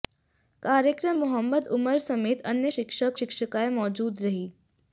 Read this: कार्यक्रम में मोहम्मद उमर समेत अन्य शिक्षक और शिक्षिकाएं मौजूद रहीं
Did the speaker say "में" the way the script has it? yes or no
no